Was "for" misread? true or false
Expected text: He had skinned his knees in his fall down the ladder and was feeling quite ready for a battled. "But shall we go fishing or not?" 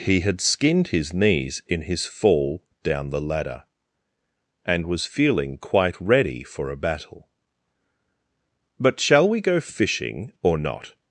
false